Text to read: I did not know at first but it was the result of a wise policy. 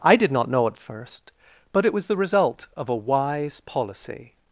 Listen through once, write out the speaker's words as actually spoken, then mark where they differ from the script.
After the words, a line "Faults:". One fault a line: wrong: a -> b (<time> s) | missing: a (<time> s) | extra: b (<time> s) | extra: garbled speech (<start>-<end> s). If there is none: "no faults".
I did not know at first but it was the result of a wise policy.
Faults:
no faults